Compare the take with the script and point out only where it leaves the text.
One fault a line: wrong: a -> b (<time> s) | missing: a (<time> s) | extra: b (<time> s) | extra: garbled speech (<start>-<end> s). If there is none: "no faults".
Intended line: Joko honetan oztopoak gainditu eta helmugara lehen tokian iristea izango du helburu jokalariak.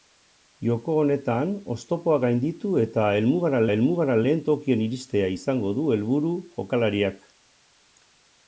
extra: helmugara (3.7 s)